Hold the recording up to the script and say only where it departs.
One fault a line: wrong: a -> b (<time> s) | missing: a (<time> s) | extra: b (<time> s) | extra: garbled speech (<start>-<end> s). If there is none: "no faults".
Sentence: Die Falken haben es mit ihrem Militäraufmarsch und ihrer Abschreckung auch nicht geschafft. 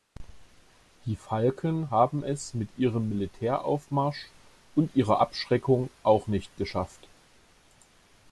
no faults